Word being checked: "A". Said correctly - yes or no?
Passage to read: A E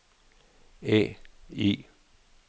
yes